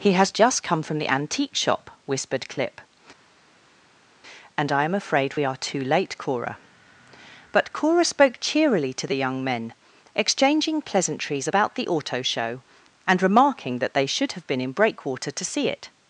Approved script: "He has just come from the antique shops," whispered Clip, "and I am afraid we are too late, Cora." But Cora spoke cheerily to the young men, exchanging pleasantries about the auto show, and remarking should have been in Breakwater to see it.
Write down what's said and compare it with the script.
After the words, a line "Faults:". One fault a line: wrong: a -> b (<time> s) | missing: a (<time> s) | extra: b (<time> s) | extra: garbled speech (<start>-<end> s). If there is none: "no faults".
"He has just come from the antique shop," whispered Clip, "and I am afraid we are too late, Cora." But Cora spoke cheerily to the young men, exchanging pleasantries about the auto show, and remarking that they should have been in Breakwater to see it.
Faults:
wrong: shops -> shop (1.6 s)
extra: that they (13.8 s)